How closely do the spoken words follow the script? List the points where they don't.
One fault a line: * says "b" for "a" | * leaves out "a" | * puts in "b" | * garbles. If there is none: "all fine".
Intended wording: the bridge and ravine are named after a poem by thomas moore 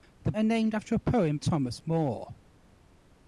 * leaves out "bridge and ravine"
* leaves out "by"